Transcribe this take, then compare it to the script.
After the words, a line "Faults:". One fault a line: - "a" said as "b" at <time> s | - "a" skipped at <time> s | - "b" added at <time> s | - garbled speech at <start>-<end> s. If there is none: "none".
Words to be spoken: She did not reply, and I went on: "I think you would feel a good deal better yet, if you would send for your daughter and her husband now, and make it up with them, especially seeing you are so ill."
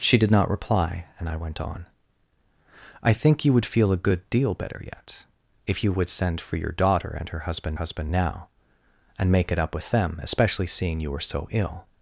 She did not reply, and I went on: "I think you would feel a good deal better yet, if you would send for your daughter and her husband husband now, and make it up with them, especially seeing you are so ill."
Faults:
- "husband" added at 7.7 s